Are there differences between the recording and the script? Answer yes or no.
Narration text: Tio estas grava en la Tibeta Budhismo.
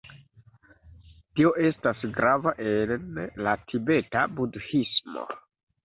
no